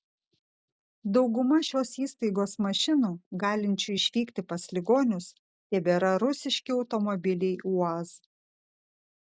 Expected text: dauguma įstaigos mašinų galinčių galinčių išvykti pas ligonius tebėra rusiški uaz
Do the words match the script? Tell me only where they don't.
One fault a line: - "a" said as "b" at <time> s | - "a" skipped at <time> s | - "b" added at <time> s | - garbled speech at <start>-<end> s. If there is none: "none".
- "šios" added at 1.7 s
- "galinčių" skipped at 4.0 s
- "automobiliai" added at 6.8 s